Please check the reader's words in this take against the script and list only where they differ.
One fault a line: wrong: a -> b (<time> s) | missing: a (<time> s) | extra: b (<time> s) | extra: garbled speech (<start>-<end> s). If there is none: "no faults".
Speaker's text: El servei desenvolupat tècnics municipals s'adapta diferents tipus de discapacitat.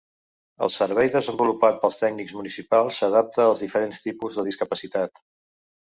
extra: pels (1.8 s)
extra: als (3.5 s)